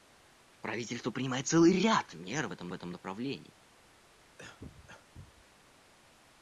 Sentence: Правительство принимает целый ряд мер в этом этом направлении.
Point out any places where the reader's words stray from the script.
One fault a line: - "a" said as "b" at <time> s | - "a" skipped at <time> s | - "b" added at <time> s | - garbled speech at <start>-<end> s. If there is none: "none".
none